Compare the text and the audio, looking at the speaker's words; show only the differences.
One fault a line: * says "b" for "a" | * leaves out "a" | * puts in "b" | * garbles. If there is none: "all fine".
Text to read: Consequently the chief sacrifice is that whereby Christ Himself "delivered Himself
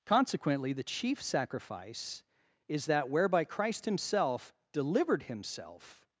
all fine